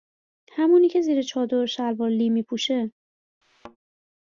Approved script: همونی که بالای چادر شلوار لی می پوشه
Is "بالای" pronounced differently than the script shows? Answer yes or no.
yes